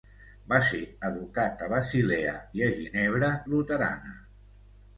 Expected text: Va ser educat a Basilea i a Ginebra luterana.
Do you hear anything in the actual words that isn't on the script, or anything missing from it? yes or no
no